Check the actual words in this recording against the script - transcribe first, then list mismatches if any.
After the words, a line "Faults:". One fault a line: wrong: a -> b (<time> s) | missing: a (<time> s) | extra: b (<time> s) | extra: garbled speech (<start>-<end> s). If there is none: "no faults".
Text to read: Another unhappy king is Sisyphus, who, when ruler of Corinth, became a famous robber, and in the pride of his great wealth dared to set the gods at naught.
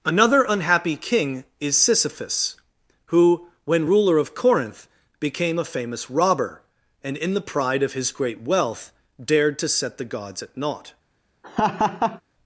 Another unhappy king is Sisyphus, who, when ruler of Corinth, became a famous robber, and in the pride of his great wealth dared to set the gods at naught.
Faults:
no faults